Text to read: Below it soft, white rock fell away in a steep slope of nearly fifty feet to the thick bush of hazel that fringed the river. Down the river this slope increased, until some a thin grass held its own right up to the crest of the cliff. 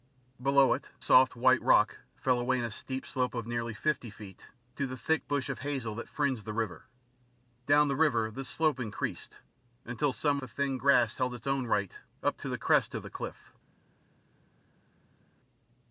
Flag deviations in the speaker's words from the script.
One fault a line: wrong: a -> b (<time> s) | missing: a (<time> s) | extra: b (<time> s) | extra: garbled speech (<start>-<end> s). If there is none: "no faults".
no faults